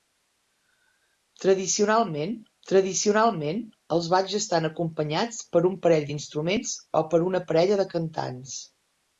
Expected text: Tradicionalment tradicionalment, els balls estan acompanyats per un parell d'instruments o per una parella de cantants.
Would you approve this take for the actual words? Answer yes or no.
yes